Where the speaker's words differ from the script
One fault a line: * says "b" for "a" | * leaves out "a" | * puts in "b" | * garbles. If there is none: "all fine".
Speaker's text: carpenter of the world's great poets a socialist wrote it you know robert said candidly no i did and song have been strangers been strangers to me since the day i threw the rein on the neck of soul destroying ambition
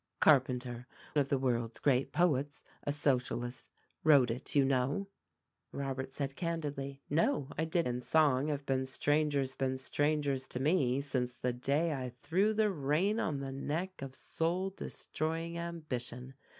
all fine